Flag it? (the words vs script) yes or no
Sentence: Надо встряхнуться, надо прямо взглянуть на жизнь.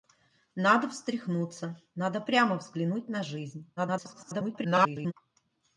yes